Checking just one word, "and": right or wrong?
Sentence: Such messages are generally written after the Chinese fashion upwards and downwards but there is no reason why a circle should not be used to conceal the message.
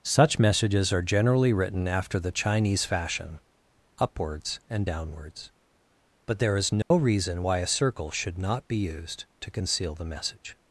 right